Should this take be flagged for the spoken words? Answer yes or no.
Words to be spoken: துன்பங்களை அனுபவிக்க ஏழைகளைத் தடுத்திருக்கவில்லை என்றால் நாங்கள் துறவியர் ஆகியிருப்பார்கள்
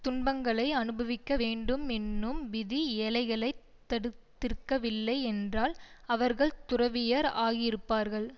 yes